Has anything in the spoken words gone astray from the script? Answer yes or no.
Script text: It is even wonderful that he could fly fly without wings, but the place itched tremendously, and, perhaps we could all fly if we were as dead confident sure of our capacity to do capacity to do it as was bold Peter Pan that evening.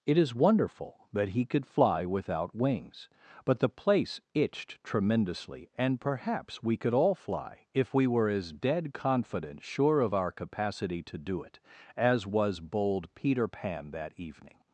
yes